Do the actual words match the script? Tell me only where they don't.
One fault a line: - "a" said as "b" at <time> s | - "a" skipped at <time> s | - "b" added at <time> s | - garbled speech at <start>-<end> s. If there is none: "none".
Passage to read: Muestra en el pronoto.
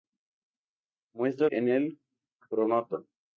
none